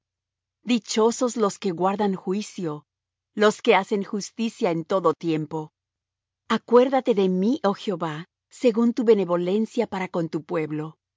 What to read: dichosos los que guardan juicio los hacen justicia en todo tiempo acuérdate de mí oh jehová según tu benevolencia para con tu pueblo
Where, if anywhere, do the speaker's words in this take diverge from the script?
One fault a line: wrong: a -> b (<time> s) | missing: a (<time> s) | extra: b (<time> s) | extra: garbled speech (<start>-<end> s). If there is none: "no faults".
extra: que (3.6 s)